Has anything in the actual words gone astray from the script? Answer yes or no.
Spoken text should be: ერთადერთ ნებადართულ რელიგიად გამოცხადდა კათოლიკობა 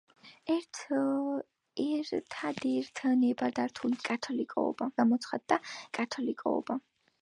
yes